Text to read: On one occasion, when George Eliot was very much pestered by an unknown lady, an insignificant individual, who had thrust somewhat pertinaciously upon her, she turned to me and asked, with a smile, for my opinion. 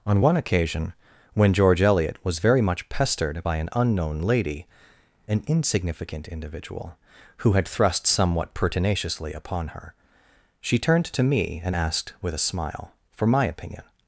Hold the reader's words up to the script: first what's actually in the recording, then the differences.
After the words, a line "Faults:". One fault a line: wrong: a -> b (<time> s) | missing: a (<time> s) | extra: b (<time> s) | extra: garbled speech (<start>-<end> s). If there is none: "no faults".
On one occasion, when George Eliot was very much pestered by an unknown lady, an insignificant individual, who had thrust somewhat pertinaciously upon her, she turned to me and asked, with a smile, for my opinion.
Faults:
no faults